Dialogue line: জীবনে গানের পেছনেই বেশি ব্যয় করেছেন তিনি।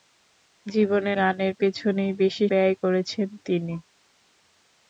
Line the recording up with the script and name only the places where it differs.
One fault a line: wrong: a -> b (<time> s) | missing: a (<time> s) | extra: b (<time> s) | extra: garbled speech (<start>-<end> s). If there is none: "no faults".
no faults